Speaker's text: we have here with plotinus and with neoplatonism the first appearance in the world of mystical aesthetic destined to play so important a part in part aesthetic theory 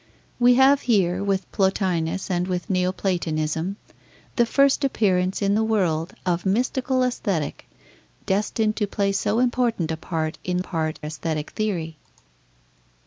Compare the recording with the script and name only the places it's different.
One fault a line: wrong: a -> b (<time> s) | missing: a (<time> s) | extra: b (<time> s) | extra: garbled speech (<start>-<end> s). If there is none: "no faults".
no faults